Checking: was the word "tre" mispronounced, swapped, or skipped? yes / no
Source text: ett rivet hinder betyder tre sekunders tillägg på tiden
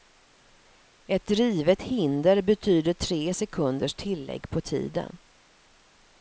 no